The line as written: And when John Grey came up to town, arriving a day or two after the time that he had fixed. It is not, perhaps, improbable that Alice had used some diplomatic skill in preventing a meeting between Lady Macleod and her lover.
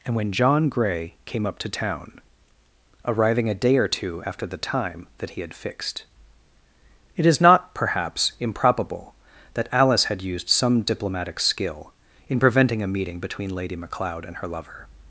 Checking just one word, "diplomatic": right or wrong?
right